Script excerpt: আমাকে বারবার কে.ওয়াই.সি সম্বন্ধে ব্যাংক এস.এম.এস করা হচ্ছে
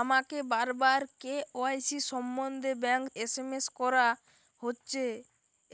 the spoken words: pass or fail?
pass